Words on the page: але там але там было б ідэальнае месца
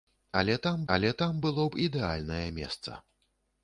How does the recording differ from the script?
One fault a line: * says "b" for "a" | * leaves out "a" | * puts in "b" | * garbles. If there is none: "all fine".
all fine